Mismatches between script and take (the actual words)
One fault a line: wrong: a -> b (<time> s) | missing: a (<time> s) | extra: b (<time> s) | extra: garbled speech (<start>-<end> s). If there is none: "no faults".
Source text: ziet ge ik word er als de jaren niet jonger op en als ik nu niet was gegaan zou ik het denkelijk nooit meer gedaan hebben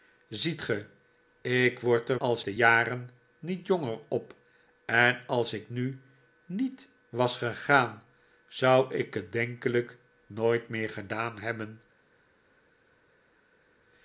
no faults